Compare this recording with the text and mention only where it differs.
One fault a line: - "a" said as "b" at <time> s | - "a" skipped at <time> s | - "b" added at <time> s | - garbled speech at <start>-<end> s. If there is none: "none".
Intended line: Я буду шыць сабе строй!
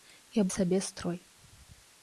- "буду шыць" skipped at 0.4 s